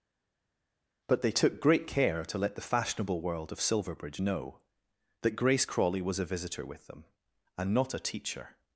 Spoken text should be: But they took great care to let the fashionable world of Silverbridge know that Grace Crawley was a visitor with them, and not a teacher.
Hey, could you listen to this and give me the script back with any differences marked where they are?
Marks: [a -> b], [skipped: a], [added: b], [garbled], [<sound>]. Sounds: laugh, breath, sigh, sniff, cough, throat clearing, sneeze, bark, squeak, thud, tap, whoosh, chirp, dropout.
But they took great care to let the fashionable world of Silverbridge know that Grace Crawley was a visitor with them, and not a teacher.